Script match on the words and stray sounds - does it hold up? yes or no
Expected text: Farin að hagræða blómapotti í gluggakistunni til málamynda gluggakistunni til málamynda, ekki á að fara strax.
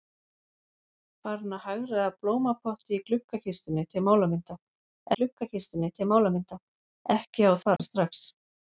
no